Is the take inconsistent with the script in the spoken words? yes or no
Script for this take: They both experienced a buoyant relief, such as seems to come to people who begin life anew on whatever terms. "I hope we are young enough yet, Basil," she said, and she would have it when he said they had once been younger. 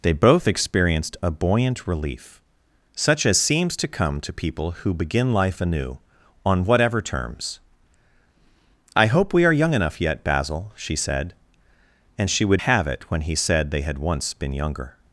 no